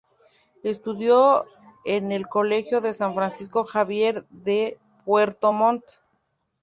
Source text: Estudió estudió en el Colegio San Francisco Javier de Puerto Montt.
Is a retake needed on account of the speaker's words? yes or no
yes